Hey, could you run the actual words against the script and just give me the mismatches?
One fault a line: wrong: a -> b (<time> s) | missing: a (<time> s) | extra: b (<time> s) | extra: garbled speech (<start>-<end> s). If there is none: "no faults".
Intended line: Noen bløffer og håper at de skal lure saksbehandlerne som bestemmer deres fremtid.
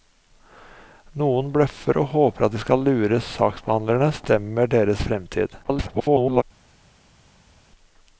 missing: som (4.1 s)
extra: garbled speech (5.6-6.4 s)